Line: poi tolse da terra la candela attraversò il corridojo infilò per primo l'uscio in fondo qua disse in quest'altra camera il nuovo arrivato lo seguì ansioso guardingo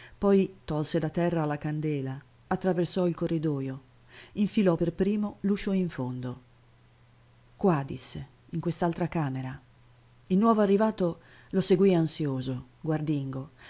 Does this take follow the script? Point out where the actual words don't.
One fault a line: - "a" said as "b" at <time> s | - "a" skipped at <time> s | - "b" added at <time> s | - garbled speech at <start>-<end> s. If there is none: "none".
none